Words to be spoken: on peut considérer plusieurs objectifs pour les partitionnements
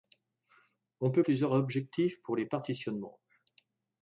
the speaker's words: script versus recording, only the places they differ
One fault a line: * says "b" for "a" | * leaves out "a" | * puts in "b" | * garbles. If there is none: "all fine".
* leaves out "considérer"